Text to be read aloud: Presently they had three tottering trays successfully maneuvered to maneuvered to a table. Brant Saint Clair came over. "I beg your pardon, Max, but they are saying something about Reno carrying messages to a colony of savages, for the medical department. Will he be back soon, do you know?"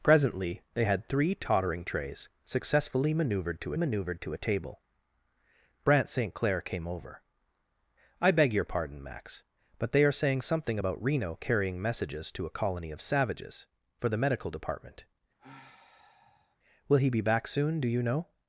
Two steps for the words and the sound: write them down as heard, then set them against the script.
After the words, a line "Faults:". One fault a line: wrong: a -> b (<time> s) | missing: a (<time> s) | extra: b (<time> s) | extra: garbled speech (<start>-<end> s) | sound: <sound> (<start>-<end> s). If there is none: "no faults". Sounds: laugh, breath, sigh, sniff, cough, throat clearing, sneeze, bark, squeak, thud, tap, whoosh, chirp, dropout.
Presently they had three tottering trays successfully maneuvered to maneuvered to a table. Brant Saint Clair came over. "I beg your pardon, Max, but they are saying something about Reno carrying messages to a colony of savages, for the medical department. Will he be back soon, do you know?"
Faults:
sound: sigh (15.4-16.6 s)